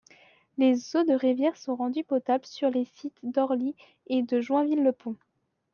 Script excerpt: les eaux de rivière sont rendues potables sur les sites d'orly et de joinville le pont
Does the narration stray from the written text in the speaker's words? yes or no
no